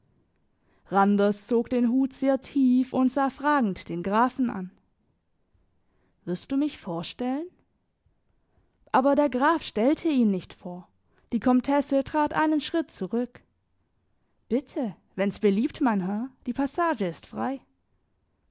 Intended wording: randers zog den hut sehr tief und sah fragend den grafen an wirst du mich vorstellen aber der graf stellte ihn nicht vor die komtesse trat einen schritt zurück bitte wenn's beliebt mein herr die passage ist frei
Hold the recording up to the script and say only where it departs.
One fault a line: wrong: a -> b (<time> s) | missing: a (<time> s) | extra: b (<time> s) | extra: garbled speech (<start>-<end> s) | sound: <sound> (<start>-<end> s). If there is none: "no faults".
no faults